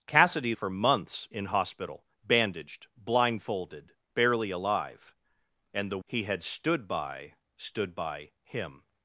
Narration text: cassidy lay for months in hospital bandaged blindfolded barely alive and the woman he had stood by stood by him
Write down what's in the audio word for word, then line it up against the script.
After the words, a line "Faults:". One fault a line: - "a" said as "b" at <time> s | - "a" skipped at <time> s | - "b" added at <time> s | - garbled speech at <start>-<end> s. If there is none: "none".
cassidy for months in hospital bandaged blindfolded barely alive and the he had stood by stood by him
Faults:
- "lay" skipped at 0.6 s
- "woman" skipped at 6.0 s